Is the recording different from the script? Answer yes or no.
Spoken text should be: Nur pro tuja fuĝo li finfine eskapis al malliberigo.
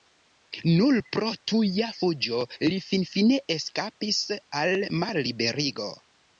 no